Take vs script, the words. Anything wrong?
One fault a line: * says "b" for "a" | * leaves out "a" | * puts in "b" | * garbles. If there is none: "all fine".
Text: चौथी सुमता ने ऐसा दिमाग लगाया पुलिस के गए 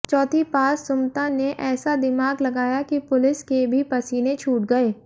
* puts in "पास"
* puts in "कि"
* puts in "भी पसीने छूट"